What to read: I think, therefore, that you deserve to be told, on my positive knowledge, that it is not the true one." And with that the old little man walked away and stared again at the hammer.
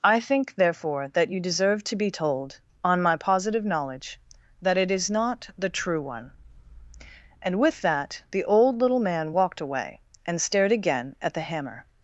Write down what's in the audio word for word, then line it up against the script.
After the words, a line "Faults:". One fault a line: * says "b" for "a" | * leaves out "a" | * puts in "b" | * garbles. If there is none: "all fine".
I think, therefore, that you deserve to be told, on my positive knowledge, that it is not the true one." And with that the old little man walked away and stared again at the hammer.
Faults:
all fine